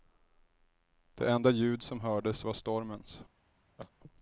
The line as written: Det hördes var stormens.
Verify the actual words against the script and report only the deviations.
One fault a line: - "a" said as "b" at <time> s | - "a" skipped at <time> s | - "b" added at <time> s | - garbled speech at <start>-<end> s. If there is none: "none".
- "enda ljud som" added at 1.3 s